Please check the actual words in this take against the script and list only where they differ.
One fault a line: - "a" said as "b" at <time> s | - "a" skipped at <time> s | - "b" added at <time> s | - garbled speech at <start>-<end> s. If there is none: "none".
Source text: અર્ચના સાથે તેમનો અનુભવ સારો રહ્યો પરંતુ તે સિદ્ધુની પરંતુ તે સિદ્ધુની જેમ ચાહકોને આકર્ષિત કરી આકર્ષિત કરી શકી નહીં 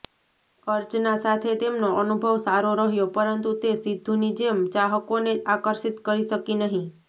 - "પરંતુ તે સિદ્ધુની" skipped at 4.3 s
- "આકર્ષિત કરી" skipped at 6.3 s